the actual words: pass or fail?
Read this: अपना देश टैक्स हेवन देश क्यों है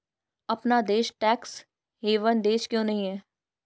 fail